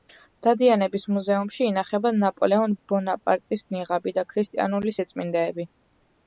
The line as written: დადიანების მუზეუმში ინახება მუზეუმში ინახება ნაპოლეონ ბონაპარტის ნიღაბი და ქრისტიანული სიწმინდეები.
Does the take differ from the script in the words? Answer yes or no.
yes